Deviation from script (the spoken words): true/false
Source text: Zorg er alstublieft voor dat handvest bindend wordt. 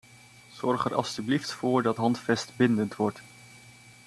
false